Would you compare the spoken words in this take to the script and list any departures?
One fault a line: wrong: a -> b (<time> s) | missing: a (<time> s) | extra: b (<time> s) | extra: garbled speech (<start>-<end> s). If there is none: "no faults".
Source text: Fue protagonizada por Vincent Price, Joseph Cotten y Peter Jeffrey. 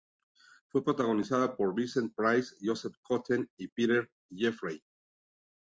no faults